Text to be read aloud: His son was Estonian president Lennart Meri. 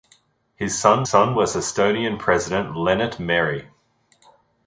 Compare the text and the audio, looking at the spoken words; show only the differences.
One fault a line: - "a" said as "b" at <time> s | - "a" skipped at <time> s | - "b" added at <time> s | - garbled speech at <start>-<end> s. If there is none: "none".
- "son" added at 1.0 s